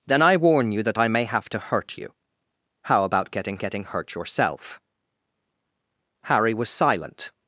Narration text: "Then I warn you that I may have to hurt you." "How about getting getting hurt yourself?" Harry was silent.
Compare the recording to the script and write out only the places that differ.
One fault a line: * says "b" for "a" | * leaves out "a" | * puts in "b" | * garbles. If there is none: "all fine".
all fine